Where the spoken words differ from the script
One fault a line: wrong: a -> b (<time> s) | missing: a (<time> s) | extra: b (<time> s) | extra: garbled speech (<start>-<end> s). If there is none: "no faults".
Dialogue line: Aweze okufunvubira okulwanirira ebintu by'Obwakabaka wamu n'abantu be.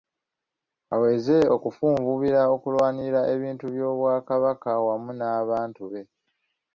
no faults